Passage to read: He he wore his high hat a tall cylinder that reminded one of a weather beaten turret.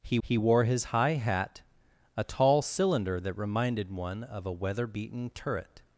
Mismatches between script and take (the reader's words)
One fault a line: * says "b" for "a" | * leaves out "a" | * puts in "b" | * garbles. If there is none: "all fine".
all fine